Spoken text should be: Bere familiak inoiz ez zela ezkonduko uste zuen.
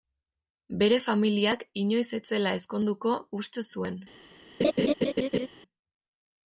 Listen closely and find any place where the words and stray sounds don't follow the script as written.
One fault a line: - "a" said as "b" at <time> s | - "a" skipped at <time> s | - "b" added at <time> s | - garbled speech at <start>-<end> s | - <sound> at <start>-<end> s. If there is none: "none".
- laugh at 4.6-5.5 s